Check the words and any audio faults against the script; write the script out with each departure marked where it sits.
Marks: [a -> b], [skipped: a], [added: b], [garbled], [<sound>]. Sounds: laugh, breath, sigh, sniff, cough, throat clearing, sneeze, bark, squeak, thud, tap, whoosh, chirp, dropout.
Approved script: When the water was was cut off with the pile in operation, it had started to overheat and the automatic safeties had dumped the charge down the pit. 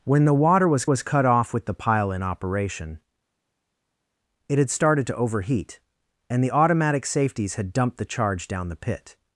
When the water was was cut off with the pile in operation, it had started to overheat and the automatic safeties had dumped the charge down the pit.